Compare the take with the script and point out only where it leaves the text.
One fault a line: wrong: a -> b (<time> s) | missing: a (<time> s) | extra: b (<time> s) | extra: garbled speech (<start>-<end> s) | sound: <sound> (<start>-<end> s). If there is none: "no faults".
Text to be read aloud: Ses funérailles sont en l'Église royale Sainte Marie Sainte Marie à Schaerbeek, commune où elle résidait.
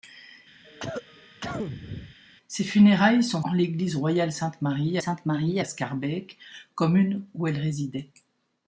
sound: cough (0.6-2.2 s)